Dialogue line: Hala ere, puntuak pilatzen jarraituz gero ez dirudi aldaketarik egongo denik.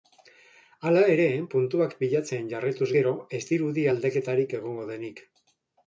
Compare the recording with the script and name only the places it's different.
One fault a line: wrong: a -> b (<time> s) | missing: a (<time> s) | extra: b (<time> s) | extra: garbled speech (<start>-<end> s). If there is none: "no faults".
no faults